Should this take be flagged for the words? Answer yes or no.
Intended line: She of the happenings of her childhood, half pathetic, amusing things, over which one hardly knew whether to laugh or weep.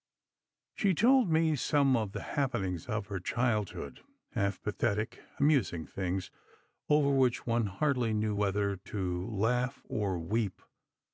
yes